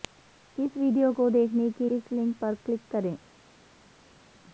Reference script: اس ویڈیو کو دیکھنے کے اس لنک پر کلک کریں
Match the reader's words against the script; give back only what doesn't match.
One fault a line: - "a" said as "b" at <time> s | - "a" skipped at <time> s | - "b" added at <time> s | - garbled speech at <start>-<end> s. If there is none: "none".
none